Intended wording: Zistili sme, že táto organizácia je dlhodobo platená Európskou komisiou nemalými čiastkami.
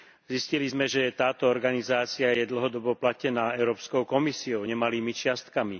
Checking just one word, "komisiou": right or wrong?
right